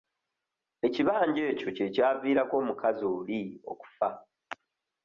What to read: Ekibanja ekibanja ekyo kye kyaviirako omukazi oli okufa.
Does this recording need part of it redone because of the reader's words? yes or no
yes